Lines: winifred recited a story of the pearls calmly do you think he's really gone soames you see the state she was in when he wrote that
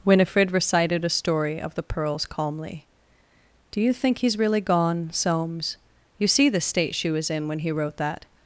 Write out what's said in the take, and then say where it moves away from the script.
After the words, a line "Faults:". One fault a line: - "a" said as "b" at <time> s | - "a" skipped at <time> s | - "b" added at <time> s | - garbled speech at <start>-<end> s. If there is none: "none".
winifred recited a story of the pearls calmly do you think he's really gone soames you see the state she was in when he wrote that
Faults:
none